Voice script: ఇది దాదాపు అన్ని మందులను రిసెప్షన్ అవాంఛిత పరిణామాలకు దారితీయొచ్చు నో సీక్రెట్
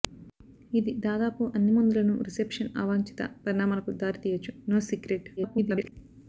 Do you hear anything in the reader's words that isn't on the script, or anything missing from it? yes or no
yes